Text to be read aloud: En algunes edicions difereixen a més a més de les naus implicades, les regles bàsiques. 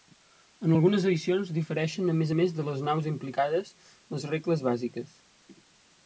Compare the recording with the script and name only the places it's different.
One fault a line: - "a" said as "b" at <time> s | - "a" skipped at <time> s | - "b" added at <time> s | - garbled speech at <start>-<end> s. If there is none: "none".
none